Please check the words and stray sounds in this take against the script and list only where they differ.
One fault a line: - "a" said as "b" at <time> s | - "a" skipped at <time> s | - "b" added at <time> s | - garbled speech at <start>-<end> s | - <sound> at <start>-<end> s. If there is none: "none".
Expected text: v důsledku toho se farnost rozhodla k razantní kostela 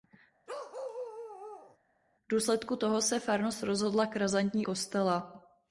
- bark at 0.5-1.8 s